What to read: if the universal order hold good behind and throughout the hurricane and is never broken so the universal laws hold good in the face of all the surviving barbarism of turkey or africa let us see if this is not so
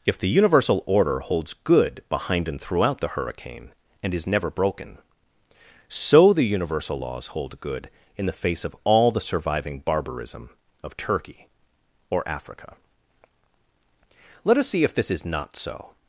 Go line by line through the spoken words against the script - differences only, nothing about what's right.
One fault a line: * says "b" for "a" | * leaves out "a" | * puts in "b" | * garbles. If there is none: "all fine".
* says "holds" for "hold"